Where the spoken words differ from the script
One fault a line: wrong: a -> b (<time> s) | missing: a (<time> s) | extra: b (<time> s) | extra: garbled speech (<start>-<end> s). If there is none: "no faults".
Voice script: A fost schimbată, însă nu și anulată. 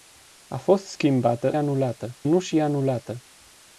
wrong: însă -> anulată (1.5 s)